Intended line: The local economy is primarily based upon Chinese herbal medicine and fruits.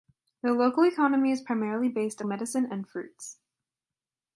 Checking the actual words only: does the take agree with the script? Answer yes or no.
no